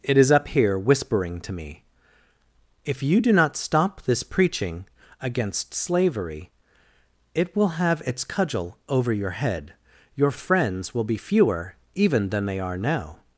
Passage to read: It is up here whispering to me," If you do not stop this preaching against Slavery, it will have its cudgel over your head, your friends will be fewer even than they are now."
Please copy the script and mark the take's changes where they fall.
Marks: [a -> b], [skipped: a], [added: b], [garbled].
It is up here whispering to me," If you do not stop this preaching against Slavery, it will have its cudgel over your head, your friends will be fewer even than they are now."